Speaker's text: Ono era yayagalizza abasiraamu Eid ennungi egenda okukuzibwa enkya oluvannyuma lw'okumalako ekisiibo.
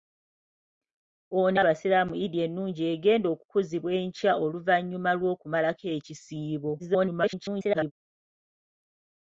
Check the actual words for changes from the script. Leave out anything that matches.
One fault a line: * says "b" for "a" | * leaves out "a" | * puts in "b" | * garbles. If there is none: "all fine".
* leaves out "era yayagalizza"
* garbles